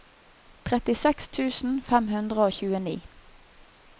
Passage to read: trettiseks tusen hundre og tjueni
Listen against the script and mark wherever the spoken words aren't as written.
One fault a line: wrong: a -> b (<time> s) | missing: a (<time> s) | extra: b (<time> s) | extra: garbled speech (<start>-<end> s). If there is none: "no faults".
extra: fem (1.9 s)